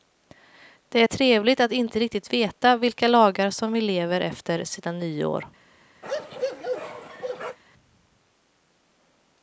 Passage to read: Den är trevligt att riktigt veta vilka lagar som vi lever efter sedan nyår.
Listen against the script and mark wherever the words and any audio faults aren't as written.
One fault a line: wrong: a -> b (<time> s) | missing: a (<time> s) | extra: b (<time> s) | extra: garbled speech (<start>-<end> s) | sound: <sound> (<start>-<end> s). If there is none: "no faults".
wrong: Den -> Det (0.9 s)
extra: inte (1.7 s)
sound: bark (6.0-7.6 s)